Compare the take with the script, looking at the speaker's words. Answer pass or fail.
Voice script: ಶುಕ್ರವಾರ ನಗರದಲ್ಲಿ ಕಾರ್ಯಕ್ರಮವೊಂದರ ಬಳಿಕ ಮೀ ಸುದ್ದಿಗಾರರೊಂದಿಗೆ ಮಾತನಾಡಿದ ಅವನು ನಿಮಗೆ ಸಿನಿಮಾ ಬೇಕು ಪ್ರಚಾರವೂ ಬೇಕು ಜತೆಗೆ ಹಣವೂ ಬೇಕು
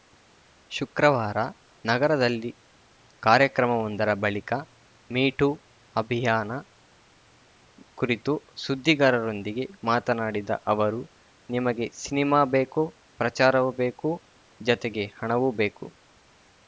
fail